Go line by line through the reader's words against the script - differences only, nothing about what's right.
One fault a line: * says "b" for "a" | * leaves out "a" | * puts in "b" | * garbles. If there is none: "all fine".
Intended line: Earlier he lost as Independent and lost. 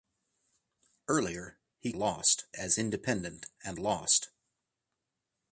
all fine